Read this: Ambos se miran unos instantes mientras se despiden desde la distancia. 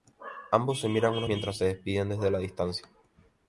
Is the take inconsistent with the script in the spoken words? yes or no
yes